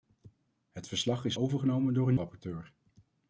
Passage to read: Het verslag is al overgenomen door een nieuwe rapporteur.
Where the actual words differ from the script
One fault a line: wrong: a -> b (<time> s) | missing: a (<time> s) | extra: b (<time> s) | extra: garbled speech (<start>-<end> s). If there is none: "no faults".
missing: al (1.4 s)
missing: nieuwe (2.1 s)